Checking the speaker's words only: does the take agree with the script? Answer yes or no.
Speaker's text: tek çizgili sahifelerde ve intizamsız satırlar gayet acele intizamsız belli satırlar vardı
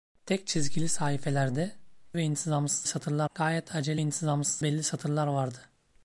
yes